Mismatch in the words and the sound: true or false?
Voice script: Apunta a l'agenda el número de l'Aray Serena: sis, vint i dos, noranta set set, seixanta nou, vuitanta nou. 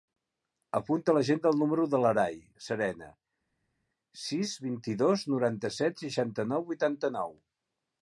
true